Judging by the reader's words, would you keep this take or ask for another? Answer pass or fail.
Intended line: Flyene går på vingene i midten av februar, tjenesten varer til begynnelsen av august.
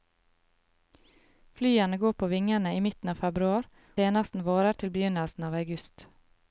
pass